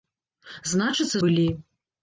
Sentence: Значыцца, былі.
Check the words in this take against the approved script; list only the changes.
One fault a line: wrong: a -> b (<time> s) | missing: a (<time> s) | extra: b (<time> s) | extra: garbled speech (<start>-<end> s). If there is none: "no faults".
no faults